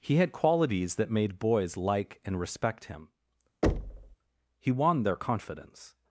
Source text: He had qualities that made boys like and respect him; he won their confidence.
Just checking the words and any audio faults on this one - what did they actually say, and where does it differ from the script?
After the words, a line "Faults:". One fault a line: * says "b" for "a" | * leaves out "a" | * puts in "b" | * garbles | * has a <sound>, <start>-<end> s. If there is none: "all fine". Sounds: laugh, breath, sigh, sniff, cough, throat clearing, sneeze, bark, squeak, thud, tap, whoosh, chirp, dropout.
He had qualities that made boys like and respect him; he won their confidence.
Faults:
* has a thud, 3.6-4.2 s